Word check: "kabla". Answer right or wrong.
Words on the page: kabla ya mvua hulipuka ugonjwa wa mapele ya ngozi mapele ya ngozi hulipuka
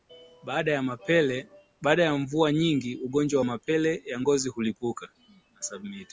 wrong